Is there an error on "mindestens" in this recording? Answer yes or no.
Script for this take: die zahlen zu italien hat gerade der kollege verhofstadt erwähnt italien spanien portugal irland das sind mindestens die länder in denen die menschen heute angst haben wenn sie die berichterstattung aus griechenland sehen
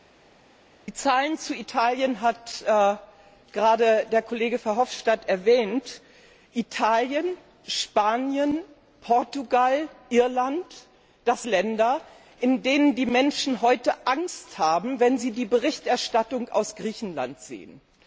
yes